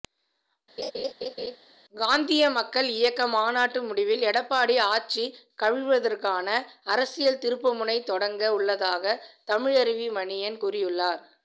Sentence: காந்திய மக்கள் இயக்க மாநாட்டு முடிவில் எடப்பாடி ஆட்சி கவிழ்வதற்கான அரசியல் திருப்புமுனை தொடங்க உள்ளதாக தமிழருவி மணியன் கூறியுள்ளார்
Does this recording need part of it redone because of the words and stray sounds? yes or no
yes